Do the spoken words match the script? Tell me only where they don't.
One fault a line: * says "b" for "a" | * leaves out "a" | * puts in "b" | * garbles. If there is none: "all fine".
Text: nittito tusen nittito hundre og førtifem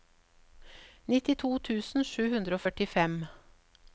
* says "sju" for "nittito"